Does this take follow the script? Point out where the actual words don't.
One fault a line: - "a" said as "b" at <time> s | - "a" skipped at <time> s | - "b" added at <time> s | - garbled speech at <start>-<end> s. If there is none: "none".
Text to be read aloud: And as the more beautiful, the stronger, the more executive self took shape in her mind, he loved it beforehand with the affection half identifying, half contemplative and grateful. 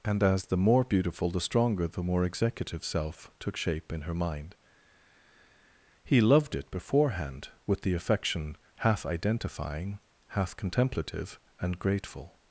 none